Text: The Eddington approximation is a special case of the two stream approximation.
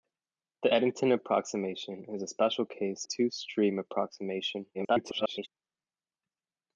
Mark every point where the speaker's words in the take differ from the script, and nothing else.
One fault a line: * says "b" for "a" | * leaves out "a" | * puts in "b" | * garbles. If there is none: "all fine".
* leaves out "of the"
* garbles